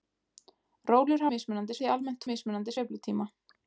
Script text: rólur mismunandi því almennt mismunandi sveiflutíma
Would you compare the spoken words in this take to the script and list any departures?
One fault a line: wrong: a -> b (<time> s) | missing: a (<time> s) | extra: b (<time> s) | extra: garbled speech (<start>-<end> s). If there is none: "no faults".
no faults